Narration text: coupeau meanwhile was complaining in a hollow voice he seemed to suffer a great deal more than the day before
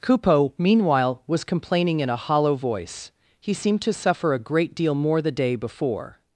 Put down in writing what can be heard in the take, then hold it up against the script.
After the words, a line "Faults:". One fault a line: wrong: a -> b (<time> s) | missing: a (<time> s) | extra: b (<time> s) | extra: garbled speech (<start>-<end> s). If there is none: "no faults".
coupeau meanwhile was complaining in a hollow voice he seemed to suffer a great deal more the day before
Faults:
missing: than (5.2 s)